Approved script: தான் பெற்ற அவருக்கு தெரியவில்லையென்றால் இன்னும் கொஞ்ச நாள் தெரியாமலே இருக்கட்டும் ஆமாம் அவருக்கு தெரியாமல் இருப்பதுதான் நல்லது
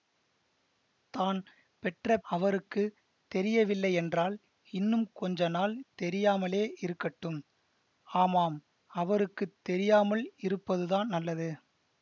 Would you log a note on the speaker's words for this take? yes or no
no